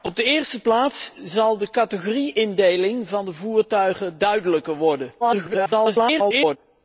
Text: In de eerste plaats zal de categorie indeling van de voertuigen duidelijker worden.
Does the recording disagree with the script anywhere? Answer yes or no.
yes